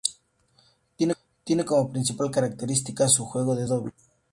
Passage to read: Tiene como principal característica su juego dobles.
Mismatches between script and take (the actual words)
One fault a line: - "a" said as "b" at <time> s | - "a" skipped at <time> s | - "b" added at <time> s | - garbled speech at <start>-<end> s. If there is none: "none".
- "de" added at 3.5 s